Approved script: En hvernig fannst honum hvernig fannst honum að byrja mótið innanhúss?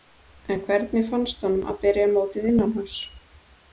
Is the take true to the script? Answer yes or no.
no